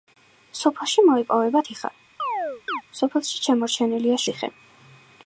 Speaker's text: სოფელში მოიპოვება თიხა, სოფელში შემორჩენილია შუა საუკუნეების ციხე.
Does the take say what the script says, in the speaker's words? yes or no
no